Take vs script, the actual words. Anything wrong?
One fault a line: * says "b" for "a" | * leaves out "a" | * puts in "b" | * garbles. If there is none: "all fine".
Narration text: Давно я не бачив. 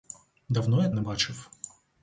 all fine